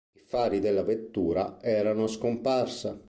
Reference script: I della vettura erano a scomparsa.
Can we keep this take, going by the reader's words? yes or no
no